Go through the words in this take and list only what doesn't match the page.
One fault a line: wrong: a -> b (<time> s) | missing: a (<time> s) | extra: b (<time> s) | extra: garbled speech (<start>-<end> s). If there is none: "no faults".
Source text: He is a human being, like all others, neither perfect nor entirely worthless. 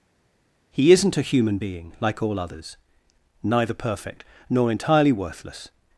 wrong: is -> isn't (0.9 s)